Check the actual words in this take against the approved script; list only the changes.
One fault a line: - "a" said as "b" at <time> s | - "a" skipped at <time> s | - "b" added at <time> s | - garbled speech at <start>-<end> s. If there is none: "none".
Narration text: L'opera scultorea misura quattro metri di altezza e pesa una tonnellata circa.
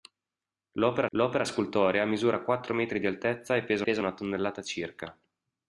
- "l'opera" added at 1.2 s
- "pesa" added at 3.8 s